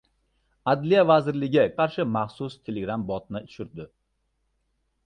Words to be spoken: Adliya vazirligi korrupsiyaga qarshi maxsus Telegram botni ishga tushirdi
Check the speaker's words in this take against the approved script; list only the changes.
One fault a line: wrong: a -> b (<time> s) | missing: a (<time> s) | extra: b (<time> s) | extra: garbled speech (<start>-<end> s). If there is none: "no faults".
missing: korrupsiyaga (1.6 s)
missing: ishga (3.4 s)